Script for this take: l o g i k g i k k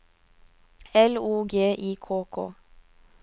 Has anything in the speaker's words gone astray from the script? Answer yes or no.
yes